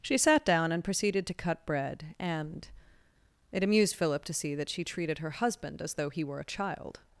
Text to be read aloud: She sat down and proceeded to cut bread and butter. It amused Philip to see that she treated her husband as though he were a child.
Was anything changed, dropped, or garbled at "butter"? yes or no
yes